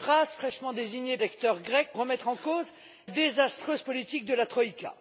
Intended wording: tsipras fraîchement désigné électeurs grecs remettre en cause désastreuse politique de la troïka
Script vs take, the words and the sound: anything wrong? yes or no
no